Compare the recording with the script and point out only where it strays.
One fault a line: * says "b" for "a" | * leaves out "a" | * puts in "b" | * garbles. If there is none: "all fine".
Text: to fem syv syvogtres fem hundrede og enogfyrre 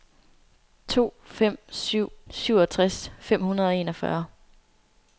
all fine